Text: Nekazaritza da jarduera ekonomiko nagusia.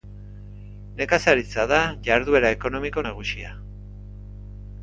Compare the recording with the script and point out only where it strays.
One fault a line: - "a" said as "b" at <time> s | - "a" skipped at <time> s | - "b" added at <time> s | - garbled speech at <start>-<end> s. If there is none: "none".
none